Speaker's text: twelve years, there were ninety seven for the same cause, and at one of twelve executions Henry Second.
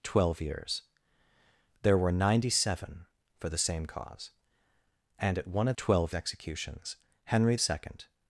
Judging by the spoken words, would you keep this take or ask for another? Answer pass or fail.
pass